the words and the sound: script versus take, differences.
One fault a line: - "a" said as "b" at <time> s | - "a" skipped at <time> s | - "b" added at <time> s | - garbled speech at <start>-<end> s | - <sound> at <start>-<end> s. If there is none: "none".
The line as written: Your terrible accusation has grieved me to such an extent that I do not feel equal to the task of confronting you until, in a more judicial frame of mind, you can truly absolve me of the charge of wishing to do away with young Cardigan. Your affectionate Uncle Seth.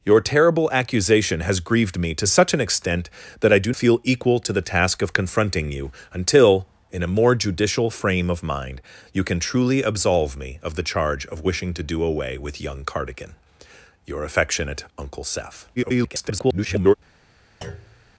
- "not" skipped at 3.7 s
- garbled speech at 15.8-16.9 s
- thud at 17.6-18.1 s